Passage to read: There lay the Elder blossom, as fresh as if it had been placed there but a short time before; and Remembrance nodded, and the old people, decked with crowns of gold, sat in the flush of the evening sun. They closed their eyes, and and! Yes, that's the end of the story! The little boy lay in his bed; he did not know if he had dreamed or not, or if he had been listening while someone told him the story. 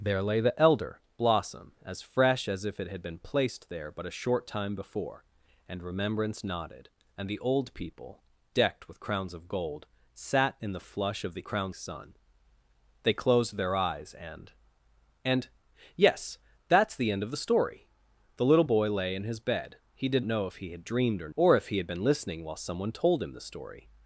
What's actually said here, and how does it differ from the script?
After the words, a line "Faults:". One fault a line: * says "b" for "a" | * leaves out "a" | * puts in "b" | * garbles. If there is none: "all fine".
There lay the Elder blossom, as fresh as if it had been placed there but a short time before; and Remembrance nodded, and the old people, decked with crowns of gold, sat in the flush of the crowns sun. They closed their eyes, and and! Yes, that's the end of the story! The little boy lay in his bed; he did know if he had dreamed or or if he had been listening while someone told him the story.
Faults:
* says "crowns" for "evening"
* leaves out "not"
* leaves out "not"